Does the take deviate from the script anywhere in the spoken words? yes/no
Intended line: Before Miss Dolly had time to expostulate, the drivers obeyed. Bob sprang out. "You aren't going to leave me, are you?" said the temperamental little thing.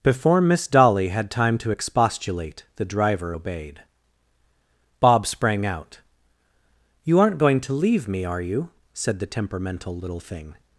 yes